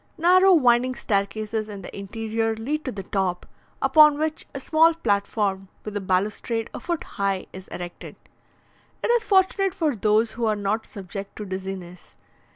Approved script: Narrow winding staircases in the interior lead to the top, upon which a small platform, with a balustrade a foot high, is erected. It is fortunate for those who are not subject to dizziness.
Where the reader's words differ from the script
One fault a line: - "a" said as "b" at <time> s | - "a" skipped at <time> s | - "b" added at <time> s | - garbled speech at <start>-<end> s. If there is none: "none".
none